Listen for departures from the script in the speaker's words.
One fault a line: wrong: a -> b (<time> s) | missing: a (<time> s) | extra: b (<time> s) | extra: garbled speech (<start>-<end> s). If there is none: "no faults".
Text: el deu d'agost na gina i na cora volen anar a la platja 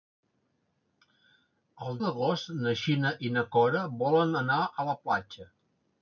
missing: deu (2.0 s)